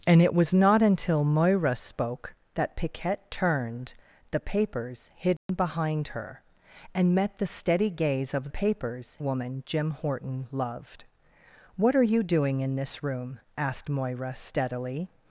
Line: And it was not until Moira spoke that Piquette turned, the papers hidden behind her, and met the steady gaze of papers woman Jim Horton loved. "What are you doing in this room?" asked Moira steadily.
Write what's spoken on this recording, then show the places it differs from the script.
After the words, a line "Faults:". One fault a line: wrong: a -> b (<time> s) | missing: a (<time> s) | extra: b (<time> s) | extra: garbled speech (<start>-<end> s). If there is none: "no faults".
And it was not until Moira spoke that Piquette turned, the papers hidden behind her, and met the steady gaze of papers woman Jim Horton loved. "What are you doing in this room?" asked Moira steadily.
Faults:
no faults